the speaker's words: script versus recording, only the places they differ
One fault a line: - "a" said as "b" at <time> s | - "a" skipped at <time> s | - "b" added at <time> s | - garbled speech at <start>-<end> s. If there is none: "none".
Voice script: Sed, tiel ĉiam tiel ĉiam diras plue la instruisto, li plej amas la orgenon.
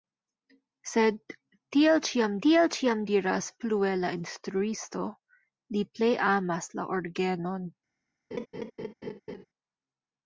none